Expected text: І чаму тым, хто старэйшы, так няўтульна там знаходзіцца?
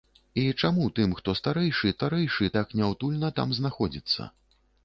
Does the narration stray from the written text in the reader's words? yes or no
yes